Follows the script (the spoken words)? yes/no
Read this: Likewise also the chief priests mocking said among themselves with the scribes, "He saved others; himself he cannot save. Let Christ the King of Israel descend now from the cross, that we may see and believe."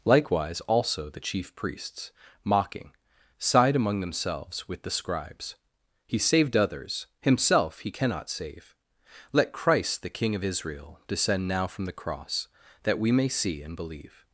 no